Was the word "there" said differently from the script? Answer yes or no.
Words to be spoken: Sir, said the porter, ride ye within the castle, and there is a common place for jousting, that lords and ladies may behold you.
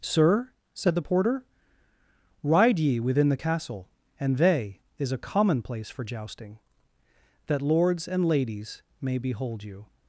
yes